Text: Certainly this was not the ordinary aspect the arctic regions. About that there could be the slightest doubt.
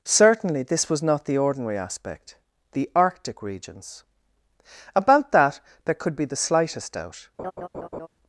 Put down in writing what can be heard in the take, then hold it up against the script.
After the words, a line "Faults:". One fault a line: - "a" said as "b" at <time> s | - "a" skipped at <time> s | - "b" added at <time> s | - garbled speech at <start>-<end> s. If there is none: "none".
Certainly this was not the ordinary aspect the arctic regions. About that there could be the slightest doubt.
Faults:
none